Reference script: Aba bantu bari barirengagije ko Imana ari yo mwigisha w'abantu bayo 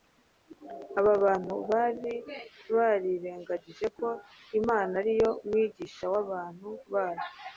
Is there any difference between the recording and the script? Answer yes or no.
no